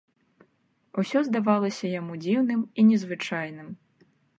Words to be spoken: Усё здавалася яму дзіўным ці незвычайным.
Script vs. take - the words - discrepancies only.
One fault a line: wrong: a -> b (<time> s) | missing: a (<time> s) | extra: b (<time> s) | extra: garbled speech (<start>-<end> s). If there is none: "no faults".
wrong: ці -> і (2.8 s)